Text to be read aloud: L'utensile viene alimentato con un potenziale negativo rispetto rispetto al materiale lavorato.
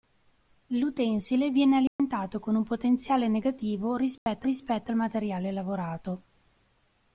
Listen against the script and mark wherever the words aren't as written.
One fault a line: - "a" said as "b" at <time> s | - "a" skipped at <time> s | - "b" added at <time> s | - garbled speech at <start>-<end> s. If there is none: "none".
none